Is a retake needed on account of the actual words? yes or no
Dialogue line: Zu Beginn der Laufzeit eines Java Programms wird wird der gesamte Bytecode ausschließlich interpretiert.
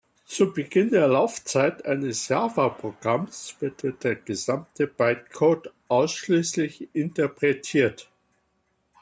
no